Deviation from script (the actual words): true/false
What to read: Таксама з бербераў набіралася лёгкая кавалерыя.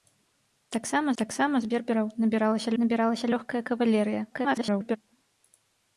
true